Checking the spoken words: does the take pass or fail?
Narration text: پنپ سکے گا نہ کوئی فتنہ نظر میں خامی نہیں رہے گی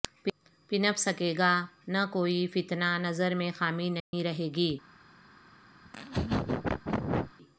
pass